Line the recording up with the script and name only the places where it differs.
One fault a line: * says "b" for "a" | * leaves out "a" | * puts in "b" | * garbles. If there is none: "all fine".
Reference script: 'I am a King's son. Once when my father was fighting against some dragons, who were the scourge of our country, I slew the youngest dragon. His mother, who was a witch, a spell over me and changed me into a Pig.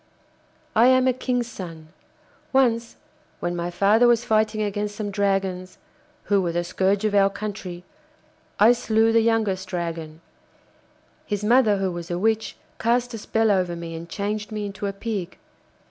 * puts in "cast"